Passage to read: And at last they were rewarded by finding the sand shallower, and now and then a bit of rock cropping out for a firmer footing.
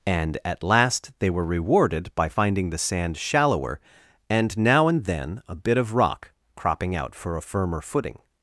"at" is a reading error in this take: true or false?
false